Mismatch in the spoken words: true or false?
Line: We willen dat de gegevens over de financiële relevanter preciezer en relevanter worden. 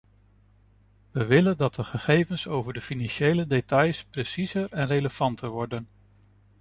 true